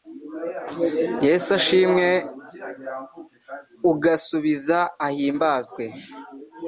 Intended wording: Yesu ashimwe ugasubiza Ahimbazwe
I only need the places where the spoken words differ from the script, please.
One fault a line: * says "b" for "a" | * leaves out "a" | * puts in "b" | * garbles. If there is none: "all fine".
all fine